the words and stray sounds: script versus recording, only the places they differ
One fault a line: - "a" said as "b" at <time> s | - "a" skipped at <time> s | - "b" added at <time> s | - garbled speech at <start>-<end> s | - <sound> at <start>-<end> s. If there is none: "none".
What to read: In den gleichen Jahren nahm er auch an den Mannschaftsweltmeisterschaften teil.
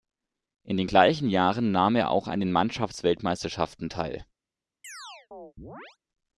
- chirp at 4.8-6.0 s